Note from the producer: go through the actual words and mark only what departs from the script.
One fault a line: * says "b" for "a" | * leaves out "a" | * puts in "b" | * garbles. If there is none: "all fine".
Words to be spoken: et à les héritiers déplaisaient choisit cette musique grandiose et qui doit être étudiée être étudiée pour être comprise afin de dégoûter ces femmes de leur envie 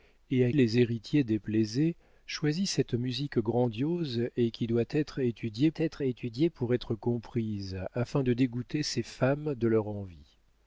all fine